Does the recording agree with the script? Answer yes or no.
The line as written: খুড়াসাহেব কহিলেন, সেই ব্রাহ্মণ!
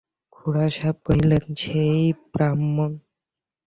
yes